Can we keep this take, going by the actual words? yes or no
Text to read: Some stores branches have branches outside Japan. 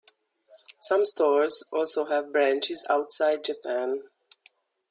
no